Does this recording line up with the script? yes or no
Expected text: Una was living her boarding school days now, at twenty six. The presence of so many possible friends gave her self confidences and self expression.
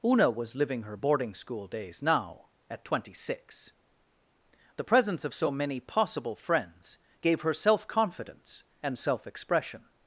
no